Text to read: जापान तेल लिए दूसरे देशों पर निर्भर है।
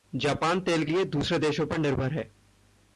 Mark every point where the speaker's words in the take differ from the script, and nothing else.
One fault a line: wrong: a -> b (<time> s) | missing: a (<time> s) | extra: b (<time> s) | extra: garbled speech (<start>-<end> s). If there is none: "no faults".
no faults